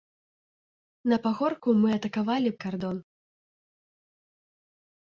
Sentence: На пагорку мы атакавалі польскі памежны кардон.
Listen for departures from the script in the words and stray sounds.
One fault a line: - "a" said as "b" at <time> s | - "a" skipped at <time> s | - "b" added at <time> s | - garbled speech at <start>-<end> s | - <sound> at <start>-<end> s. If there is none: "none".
- "польскі памежны" skipped at 2.5 s